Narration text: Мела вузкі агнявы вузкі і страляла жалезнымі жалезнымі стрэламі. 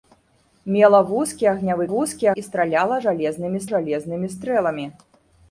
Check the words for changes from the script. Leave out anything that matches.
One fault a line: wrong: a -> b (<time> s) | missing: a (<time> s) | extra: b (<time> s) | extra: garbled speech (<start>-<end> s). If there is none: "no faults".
no faults